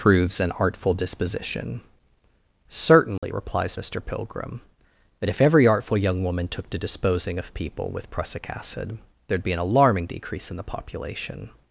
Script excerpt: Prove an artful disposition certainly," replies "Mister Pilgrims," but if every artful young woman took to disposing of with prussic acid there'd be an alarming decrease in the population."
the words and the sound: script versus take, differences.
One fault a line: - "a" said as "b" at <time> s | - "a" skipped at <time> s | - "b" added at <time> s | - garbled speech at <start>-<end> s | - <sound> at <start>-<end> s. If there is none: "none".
- "Prove" said as "Proves" at 0.0 s
- dropout at 3.2-3.2 s
- "Pilgrims" said as "Pilgrim" at 4.0 s
- "people" added at 7.5 s